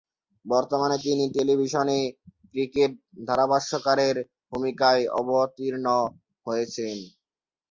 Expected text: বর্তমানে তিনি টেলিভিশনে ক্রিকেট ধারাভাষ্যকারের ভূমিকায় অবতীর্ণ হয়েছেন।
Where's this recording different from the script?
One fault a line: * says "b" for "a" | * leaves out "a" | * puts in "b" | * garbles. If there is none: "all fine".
all fine